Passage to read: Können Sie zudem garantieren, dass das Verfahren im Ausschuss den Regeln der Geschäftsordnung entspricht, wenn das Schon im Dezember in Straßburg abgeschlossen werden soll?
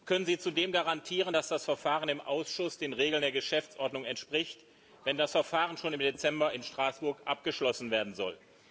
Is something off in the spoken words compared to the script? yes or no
yes